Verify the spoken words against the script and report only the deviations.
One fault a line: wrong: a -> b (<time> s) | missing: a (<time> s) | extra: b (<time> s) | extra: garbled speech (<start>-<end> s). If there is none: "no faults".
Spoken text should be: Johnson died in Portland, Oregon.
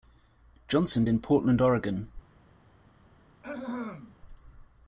missing: died (1.1 s)